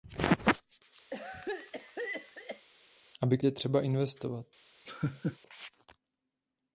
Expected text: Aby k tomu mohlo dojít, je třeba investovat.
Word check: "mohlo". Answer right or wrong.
wrong